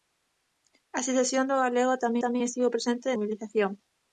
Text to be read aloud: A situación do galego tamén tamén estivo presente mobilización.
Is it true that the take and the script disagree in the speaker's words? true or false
false